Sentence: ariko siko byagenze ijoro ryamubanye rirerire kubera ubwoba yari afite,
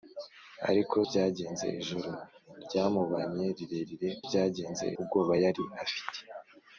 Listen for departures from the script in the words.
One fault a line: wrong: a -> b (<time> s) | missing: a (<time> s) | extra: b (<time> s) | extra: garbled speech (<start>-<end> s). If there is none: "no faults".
missing: siko (1.0 s)
wrong: kubera -> byagenze (4.3 s)